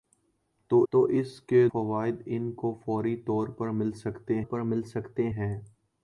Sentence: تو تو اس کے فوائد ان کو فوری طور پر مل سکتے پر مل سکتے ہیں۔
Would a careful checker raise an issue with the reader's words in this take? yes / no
no